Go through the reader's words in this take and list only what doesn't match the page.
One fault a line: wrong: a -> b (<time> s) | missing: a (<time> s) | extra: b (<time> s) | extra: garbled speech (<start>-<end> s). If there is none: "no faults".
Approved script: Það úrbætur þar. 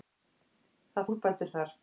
no faults